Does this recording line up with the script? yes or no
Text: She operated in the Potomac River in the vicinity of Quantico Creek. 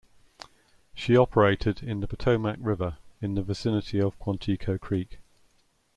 yes